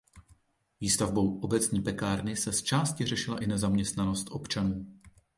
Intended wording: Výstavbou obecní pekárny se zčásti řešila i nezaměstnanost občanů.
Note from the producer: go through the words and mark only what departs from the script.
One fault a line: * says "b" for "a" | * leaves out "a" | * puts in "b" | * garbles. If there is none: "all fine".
all fine